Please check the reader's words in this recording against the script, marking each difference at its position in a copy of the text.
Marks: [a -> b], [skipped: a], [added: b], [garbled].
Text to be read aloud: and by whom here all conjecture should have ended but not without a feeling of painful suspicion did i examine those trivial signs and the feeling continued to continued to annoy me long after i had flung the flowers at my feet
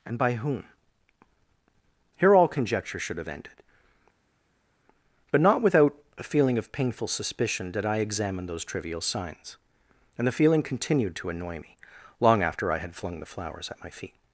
and by whom here all conjecture should have ended but not without a feeling of painful suspicion did i examine those trivial signs and the feeling continued to [skipped: continued to] annoy me long after i had flung the flowers at my feet